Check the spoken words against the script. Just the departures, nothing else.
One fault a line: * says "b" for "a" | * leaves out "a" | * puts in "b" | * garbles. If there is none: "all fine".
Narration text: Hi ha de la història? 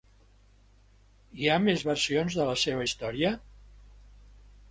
* puts in "més versions"
* puts in "seva"